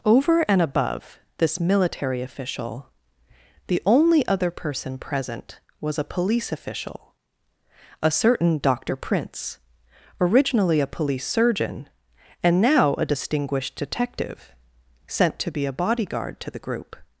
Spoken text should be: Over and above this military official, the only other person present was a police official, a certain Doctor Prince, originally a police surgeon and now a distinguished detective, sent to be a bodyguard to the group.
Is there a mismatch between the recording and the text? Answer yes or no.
no